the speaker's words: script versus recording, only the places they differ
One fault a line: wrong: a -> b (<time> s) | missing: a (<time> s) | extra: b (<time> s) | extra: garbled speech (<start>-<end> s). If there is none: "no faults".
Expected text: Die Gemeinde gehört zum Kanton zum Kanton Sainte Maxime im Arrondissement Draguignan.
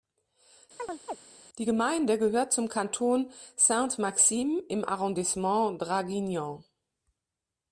missing: zum Kanton (3.3 s)